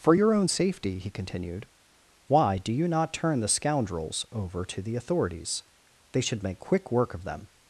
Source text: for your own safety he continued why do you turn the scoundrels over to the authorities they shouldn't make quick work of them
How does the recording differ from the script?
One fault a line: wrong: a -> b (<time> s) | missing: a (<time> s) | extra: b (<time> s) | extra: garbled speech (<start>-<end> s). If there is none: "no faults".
extra: not (2.9 s)
wrong: shouldn't -> should (6.2 s)